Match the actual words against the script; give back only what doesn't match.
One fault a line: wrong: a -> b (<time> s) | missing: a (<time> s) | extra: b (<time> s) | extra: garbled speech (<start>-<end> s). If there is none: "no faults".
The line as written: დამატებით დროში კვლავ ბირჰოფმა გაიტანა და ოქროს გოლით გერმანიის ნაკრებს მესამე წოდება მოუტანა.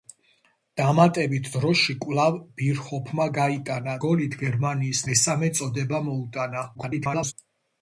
missing: და ოქროს (4.0 s)
missing: ნაკრებს (5.1 s)
extra: garbled speech (6.7-7.3 s)